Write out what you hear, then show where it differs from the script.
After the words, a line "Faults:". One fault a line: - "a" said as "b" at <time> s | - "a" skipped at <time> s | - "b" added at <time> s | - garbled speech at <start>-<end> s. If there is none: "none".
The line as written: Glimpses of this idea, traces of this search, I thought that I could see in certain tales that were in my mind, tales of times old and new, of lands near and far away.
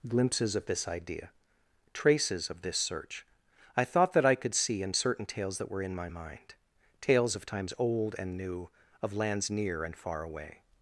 Glimpses of this idea, traces of this search, I thought that I could see in certain tales that were in my mind, tales of times old and new, of lands near and far away.
Faults:
none